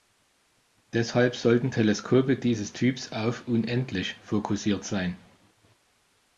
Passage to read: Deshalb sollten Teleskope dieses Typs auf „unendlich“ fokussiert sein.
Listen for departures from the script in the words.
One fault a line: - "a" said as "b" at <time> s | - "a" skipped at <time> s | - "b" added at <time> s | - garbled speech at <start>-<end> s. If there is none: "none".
none